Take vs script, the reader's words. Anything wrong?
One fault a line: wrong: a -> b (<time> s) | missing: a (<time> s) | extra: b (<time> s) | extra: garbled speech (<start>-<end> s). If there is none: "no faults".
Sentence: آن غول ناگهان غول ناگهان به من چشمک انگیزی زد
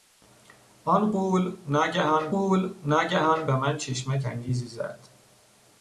no faults